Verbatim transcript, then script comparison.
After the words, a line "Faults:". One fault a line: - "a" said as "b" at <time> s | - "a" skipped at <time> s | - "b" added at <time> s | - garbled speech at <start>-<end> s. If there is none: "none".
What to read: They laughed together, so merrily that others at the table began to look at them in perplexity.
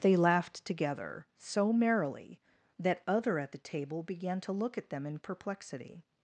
They laughed together, so merrily that other at the table began to look at them in perplexity.
Faults:
- "others" said as "other" at 3.1 s